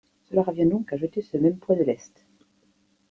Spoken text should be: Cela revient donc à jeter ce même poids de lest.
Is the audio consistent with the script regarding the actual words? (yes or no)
yes